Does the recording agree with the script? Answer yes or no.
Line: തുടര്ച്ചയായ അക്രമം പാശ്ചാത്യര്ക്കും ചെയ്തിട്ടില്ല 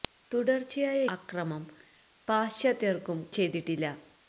yes